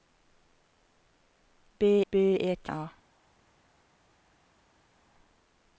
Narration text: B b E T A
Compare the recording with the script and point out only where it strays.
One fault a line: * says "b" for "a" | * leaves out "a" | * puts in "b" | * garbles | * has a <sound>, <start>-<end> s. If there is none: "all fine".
all fine